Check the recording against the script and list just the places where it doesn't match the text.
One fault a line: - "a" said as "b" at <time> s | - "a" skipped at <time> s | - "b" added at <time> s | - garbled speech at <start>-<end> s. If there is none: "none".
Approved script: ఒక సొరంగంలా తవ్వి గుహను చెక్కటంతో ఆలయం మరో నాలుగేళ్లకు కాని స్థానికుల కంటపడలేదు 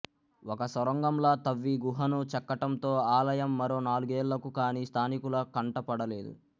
none